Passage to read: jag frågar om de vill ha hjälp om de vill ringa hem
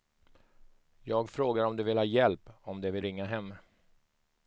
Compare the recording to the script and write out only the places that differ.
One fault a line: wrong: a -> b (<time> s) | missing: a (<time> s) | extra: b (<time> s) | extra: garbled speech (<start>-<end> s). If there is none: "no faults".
no faults